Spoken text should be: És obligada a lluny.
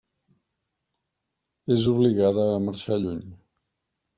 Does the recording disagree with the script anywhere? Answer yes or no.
yes